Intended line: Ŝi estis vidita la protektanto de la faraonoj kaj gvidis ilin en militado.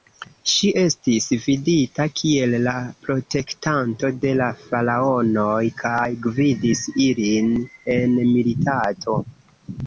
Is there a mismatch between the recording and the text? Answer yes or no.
yes